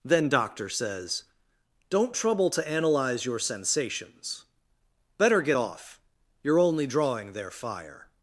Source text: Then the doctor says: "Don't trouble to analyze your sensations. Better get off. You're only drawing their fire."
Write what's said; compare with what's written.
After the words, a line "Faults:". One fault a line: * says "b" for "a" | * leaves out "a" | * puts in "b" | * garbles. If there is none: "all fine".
Then doctor says: "Don't trouble to analyze your sensations. Better get off. You're only drawing their fire."
Faults:
* leaves out "the"